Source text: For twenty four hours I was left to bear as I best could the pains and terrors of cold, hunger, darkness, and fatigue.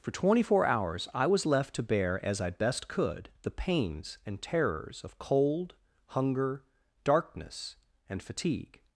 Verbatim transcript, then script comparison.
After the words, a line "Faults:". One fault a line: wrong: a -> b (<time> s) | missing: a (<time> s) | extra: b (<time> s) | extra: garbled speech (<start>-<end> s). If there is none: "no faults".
For twenty four hours I was left to bear as I best could the pains and terrors of cold, hunger, darkness, and fatigue.
Faults:
no faults